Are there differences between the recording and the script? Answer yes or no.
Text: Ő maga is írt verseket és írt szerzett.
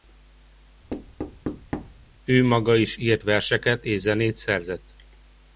yes